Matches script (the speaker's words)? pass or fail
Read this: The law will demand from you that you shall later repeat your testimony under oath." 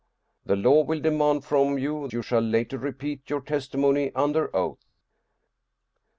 fail